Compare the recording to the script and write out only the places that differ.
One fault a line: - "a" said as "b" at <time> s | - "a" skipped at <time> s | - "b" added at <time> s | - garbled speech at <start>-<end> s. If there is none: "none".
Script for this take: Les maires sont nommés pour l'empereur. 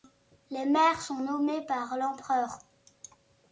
- "pour" said as "par" at 1.7 s